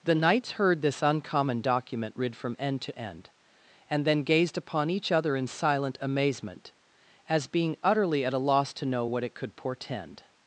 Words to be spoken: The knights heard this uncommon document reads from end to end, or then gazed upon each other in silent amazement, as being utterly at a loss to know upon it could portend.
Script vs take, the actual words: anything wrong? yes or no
yes